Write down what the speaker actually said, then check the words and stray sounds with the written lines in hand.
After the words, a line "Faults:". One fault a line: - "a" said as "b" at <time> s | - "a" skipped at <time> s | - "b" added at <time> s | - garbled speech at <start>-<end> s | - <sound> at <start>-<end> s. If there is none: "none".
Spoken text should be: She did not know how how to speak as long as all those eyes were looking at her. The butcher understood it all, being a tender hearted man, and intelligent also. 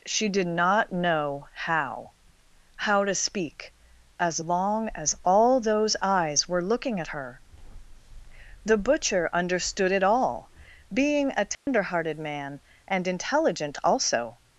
She did not know how how to speak as long as all those eyes were looking at her. The butcher understood it all, being a tender hearted man, and intelligent also.
Faults:
- dropout at 11.5-11.7 s